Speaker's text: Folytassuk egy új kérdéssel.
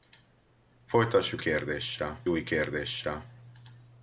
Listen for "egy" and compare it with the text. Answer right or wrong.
wrong